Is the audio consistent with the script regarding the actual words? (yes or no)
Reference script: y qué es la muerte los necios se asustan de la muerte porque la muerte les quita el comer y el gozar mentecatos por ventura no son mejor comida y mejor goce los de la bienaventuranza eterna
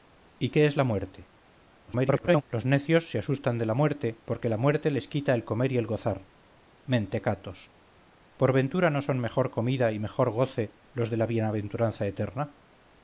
no